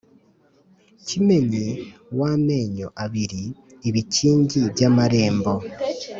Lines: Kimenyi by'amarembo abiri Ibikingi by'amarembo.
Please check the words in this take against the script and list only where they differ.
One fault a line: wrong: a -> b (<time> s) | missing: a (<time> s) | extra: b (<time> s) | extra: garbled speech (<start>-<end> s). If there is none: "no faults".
wrong: by'amarembo -> w'amenyo (2.2 s)